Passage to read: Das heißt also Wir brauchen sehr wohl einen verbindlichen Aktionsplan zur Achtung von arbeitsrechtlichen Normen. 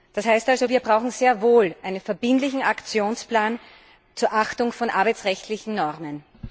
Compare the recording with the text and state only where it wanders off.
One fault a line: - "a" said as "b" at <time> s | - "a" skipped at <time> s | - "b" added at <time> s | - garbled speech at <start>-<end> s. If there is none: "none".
none